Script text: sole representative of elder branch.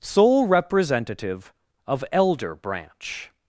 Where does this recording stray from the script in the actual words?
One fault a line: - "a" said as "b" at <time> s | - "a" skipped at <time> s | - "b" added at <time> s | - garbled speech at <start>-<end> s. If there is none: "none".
none